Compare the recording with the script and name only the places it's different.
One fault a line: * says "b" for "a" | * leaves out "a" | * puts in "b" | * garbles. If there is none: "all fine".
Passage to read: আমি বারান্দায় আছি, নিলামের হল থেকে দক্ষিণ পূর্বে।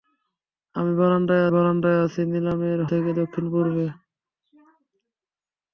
* puts in "বারান্দায়"
* leaves out "হল"